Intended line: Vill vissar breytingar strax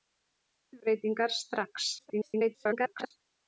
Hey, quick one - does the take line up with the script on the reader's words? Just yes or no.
no